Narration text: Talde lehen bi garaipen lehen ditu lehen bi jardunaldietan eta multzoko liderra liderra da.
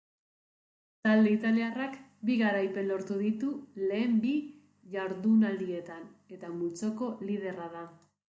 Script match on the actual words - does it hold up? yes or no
no